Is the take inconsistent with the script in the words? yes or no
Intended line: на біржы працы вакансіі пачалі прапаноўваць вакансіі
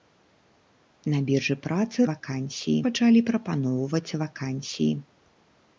no